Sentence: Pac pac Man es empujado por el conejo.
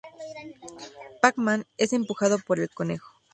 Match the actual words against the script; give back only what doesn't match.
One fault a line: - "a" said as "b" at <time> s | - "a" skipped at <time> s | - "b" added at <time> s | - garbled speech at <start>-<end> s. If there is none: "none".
- "pac" skipped at 1.4 s